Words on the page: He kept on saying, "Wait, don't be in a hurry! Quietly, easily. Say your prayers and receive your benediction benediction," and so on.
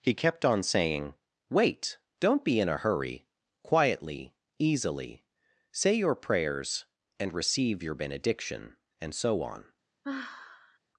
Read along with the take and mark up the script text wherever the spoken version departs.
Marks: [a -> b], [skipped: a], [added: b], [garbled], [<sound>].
He kept on saying, "Wait, don't be in a hurry! Quietly, easily. Say your prayers and receive your benediction [skipped: benediction,"] and so on. [sigh]